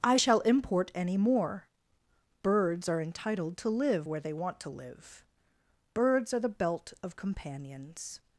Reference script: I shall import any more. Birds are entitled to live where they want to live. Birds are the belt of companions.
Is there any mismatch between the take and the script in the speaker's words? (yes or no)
no